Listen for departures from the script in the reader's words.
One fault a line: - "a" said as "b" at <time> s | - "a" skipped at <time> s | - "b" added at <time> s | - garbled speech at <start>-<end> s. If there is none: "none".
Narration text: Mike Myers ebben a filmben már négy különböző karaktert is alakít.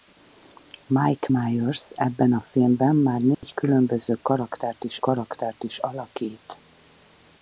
- "karaktert is" added at 5.0 s